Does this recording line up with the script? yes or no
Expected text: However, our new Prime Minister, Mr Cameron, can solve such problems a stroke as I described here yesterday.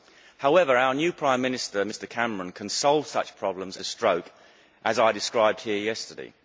yes